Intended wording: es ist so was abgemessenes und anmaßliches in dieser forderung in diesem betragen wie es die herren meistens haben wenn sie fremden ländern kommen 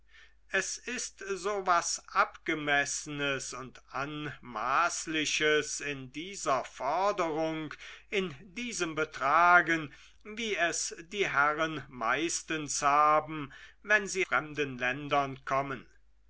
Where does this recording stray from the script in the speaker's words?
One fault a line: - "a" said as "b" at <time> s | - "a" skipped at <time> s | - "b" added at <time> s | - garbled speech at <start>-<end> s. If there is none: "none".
none